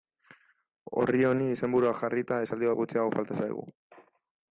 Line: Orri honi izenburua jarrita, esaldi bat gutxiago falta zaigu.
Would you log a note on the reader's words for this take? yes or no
no